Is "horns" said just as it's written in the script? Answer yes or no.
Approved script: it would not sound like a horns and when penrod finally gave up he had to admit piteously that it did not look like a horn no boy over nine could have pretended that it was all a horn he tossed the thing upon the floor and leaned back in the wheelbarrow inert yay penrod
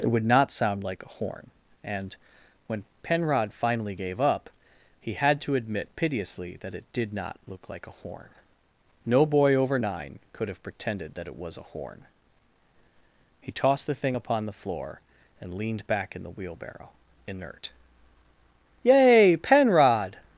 no